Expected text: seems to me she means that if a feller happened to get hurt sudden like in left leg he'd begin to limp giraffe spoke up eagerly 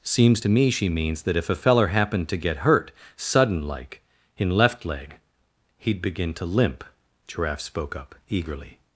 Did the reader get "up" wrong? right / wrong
right